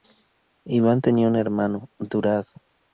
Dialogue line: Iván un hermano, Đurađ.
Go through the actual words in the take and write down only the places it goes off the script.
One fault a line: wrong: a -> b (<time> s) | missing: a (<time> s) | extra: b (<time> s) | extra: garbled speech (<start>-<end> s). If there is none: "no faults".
extra: tenía (1.0 s)